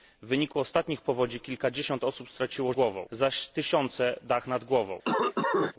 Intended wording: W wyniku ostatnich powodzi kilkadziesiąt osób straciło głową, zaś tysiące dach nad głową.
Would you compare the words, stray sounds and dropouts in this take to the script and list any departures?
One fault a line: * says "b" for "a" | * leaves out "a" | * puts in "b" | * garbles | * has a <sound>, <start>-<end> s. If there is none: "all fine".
* has a cough, 5.0-5.7 s